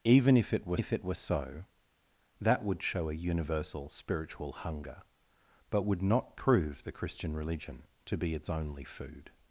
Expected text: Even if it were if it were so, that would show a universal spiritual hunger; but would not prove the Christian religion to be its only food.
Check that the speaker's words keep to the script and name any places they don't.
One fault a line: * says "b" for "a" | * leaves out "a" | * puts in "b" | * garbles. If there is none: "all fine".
all fine